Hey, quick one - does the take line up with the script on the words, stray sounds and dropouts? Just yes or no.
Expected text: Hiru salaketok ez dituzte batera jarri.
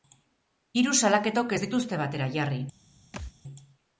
no